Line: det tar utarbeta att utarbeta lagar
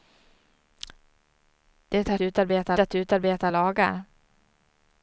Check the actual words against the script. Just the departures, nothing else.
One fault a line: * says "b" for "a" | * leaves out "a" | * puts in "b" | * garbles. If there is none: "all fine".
all fine